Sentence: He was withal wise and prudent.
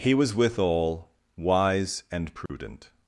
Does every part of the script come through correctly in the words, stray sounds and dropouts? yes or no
no